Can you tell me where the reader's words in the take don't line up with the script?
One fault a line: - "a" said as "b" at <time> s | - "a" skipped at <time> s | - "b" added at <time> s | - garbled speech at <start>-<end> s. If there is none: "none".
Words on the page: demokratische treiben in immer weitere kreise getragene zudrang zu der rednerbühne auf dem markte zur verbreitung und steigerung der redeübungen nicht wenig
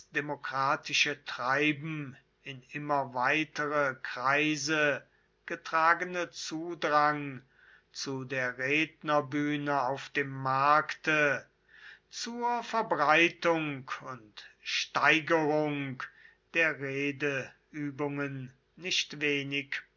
none